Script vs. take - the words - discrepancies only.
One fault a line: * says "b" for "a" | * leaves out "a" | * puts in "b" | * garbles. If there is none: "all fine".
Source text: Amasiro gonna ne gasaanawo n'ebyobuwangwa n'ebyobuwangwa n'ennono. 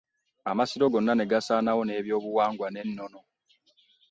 * leaves out "n'ebyobuwangwa"